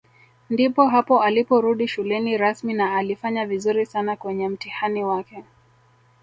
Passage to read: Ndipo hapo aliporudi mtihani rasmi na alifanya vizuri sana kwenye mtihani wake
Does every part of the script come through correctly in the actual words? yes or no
no